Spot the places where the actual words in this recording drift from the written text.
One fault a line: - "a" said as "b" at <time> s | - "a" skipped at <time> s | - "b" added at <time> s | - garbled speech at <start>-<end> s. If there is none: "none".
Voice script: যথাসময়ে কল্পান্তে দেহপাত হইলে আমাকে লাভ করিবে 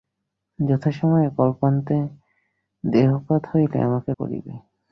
- "লাভ" skipped at 4.1 s